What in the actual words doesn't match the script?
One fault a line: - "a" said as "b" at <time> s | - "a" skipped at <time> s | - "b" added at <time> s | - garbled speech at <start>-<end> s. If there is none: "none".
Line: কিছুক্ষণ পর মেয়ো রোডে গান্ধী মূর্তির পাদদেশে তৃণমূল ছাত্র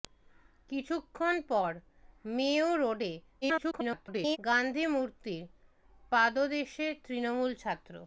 - garbled speech at 3.4-4.4 s